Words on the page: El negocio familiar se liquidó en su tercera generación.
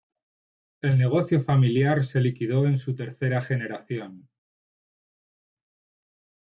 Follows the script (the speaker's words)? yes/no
yes